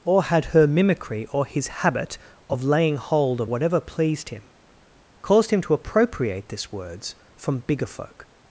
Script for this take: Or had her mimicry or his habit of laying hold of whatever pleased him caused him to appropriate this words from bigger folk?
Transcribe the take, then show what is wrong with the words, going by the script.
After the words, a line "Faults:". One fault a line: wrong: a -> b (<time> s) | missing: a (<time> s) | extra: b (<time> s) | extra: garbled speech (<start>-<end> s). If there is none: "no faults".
Or had her mimicry or his habit of laying hold of whatever pleased him caused him to appropriate this words from bigger folk?
Faults:
no faults